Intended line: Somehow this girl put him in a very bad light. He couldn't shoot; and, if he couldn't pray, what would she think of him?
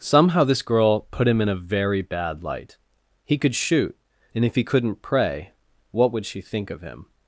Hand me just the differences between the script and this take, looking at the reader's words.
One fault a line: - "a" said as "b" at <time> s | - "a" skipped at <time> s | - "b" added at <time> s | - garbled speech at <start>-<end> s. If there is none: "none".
- "couldn't" said as "could" at 3.4 s